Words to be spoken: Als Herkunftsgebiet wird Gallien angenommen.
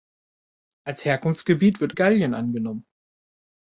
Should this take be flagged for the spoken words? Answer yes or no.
no